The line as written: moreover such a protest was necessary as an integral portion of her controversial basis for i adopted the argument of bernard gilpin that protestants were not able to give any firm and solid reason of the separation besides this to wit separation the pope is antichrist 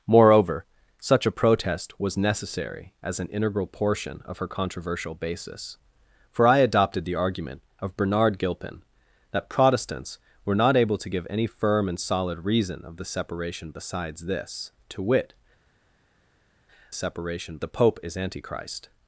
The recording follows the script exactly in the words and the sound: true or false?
true